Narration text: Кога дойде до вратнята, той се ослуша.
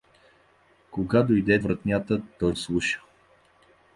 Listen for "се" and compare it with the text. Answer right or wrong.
wrong